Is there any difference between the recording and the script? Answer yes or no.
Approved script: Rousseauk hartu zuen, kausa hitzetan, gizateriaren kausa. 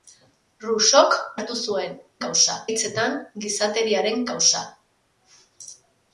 no